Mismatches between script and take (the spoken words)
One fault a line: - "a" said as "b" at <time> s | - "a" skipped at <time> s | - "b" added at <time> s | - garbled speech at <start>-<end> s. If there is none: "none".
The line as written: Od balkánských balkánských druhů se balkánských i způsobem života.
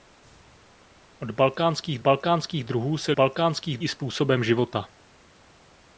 none